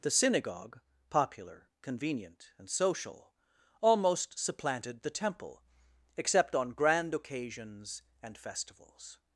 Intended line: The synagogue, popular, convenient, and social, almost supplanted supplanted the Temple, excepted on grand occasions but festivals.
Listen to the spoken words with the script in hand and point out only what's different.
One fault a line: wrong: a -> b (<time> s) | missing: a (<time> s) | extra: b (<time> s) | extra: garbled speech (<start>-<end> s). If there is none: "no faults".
missing: supplanted (5.0 s)
wrong: excepted -> except (6.2 s)
wrong: but -> and (8.2 s)